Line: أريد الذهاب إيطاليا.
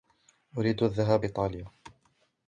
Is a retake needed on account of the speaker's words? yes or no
no